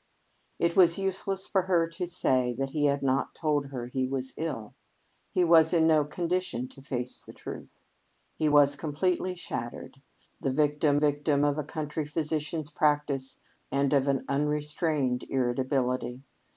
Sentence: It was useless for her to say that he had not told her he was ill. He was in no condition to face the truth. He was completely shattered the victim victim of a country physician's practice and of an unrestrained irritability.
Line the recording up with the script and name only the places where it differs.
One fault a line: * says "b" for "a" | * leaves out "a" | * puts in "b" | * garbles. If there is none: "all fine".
all fine